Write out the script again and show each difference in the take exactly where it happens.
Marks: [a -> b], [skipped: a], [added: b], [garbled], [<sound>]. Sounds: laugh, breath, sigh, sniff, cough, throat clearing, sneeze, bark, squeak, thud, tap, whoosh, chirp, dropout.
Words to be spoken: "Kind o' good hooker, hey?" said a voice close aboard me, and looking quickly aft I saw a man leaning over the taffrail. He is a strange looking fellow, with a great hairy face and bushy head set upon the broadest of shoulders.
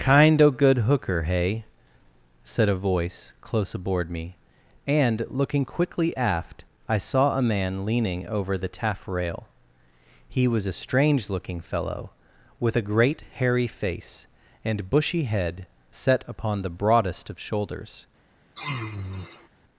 "Kind o' good hooker, hey?" said a voice close aboard me, and looking quickly aft I saw a man leaning over the taffrail. He [is -> was] a strange looking fellow, with a great hairy face and bushy head set upon the broadest of shoulders. [sniff]